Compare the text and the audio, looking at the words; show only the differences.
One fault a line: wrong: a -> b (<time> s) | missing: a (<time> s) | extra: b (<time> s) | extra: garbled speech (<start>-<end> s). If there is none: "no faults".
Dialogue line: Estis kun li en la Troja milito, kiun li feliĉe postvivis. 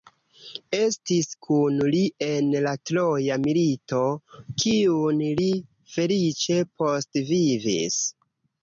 no faults